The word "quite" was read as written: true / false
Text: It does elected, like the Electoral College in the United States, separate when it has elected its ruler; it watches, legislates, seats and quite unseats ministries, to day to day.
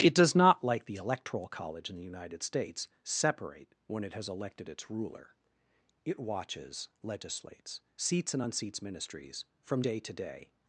false